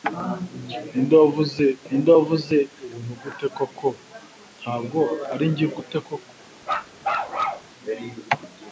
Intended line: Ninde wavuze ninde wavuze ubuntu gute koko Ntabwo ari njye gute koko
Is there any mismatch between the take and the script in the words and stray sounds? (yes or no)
yes